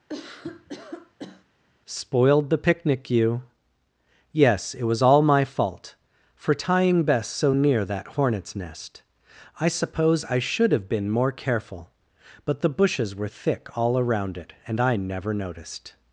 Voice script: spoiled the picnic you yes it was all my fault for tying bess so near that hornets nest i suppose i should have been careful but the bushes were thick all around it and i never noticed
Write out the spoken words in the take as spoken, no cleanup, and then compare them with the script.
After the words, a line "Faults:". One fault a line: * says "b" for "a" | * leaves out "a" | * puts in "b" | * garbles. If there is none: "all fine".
spoiled the picnic you yes it was all my fault for tying bess so near that hornets nest i suppose i should have been more careful but the bushes were thick all around it and i never noticed
Faults:
* puts in "more"